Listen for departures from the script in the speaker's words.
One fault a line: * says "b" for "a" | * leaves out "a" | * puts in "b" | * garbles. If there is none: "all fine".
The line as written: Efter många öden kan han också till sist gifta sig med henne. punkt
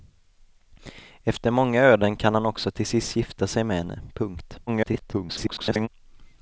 * garbles